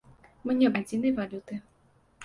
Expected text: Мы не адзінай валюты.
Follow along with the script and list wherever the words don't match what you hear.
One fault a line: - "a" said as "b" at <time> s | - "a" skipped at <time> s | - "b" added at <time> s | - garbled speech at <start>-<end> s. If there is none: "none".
none